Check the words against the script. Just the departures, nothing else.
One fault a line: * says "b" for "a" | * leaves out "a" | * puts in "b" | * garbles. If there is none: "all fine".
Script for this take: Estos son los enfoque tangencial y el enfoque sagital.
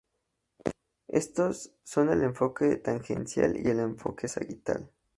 * says "el" for "los"